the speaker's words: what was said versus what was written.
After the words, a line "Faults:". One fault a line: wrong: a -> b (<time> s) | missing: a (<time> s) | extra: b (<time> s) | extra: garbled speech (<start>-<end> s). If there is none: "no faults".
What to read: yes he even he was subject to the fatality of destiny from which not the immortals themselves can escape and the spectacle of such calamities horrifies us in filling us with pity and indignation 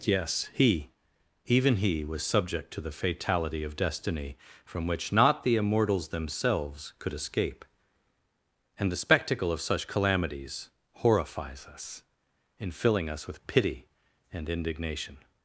yes he even he was subject to the fatality of destiny from which not the immortals themselves could escape and the spectacle of such calamities horrifies us in filling us with pity and indignation
Faults:
wrong: can -> could (7.0 s)